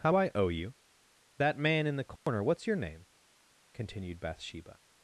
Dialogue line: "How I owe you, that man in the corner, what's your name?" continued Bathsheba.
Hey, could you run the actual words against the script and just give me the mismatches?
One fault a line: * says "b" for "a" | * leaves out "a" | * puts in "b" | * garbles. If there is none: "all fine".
all fine